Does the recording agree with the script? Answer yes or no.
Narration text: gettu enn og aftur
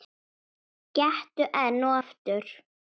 yes